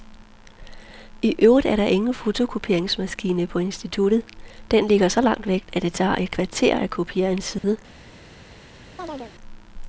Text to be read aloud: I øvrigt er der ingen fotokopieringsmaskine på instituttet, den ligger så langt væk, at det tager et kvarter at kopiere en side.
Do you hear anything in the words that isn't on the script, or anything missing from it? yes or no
no